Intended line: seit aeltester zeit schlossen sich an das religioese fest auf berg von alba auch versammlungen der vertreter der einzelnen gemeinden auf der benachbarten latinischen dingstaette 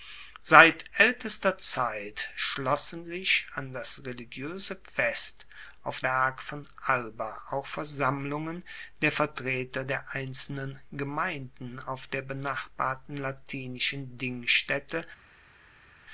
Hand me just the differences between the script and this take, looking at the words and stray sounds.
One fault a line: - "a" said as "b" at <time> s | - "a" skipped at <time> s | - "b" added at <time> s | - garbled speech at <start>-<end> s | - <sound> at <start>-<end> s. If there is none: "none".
none